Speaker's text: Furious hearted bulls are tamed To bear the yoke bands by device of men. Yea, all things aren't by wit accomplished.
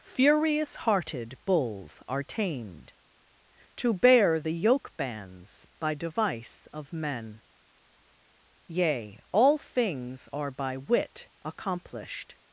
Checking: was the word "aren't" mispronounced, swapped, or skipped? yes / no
yes